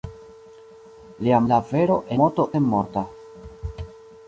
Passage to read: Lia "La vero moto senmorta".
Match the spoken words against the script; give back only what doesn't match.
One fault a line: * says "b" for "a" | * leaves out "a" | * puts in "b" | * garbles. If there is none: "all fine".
all fine